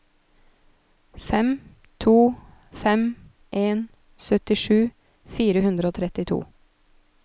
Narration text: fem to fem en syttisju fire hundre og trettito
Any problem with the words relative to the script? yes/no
no